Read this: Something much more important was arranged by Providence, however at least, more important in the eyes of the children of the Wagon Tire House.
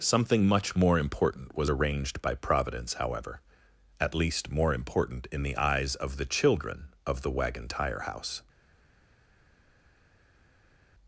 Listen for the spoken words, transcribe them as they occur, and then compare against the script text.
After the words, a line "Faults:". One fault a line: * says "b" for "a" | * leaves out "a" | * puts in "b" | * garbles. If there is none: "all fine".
Something much more important was arranged by Providence, however at least, more important in the eyes of the children of the Wagon Tire House.
Faults:
all fine